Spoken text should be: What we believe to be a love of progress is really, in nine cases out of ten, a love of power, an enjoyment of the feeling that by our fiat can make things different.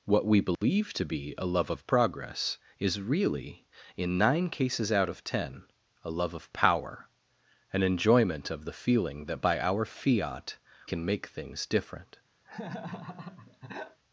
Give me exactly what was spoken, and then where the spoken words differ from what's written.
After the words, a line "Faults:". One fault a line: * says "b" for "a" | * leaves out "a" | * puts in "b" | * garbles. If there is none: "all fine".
What we believe to be a love of progress is really, in nine cases out of ten, a love of power, an enjoyment of the feeling that by our fiat can make things different.
Faults:
all fine